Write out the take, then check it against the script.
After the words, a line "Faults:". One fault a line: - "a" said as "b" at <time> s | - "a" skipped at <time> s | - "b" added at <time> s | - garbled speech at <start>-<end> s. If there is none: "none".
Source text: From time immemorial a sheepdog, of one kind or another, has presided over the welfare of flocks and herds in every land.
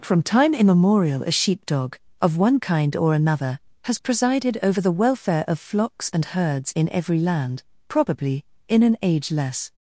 From time immemorial a sheepdog, of one kind or another, has presided over the welfare of flocks and herds in every land. Probably, in an age less
Faults:
- "Probably in an age less" added at 7.9 s